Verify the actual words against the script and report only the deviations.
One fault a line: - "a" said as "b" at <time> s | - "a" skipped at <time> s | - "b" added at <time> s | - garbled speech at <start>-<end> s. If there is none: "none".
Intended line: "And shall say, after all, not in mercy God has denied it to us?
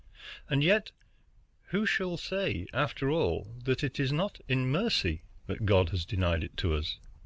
- "yet who" added at 0.6 s
- "that it is" added at 3.6 s
- "that" added at 5.5 s